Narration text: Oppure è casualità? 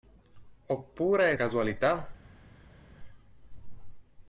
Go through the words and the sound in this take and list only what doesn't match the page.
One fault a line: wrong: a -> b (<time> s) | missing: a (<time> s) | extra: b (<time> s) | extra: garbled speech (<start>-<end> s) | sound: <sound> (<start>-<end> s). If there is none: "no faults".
no faults